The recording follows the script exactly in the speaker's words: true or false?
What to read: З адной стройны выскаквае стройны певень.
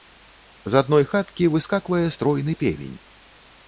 false